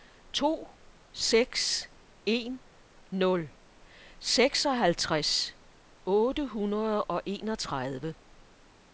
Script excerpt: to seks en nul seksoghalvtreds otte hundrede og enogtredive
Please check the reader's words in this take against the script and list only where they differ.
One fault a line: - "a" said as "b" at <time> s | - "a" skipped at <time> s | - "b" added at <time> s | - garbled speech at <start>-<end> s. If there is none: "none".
none